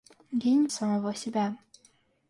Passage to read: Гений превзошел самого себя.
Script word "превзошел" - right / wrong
wrong